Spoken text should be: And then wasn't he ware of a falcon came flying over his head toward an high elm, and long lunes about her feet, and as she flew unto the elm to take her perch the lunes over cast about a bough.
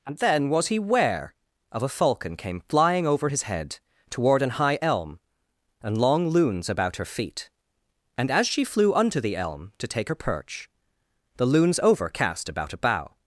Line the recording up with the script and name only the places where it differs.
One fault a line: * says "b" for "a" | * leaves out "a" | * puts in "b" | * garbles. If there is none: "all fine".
* says "was" for "wasn't"